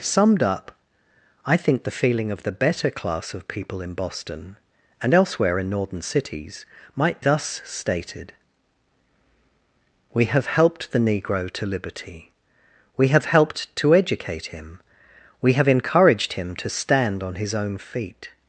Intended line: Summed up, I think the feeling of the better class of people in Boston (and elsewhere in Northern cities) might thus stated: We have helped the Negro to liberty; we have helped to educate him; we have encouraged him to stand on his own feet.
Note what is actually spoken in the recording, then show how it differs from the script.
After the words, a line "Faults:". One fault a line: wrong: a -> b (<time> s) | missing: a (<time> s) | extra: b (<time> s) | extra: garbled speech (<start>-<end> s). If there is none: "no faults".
Summed up, I think the feeling of the better class of people in Boston (and elsewhere in Northern cities) might thus stated: We have helped the Negro to liberty; we have helped to educate him; we have encouraged him to stand on his own feet.
Faults:
no faults